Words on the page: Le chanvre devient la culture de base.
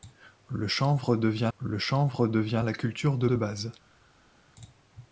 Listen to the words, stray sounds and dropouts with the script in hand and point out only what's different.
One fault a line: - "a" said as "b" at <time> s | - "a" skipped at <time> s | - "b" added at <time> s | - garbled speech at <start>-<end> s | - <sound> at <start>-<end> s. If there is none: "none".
- "le chanvre devient" added at 1.6 s
- "de" added at 3.3 s